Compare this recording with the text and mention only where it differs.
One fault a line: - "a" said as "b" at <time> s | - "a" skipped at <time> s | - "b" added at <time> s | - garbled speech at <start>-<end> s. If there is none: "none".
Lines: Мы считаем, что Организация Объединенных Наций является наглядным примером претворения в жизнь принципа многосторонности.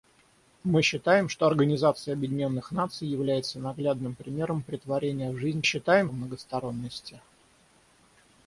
- "принципа" said as "считаем" at 5.6 s